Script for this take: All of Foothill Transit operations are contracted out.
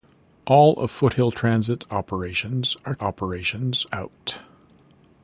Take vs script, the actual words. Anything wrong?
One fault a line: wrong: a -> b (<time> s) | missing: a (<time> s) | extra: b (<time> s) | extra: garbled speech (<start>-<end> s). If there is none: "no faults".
wrong: contracted -> operations (3.0 s)